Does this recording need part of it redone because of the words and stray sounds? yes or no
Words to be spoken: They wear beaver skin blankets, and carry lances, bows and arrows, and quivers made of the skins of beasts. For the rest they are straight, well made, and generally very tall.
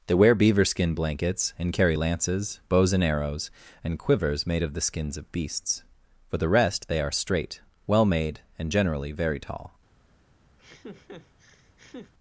yes